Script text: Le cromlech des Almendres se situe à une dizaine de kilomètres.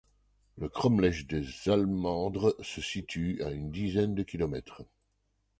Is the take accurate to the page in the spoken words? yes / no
yes